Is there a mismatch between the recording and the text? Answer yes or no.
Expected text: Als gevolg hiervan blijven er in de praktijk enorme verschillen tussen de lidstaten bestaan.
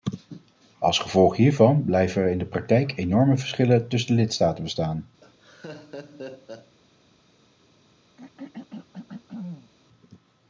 no